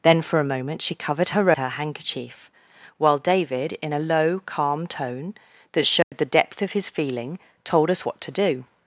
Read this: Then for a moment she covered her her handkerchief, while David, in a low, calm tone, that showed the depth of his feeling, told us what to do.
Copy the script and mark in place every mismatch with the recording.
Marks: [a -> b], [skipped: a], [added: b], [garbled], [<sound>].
Then for a moment she covered her her handkerchief, while David, in a low, calm tone, that showed [dropout] the depth of his feeling, told us what to do.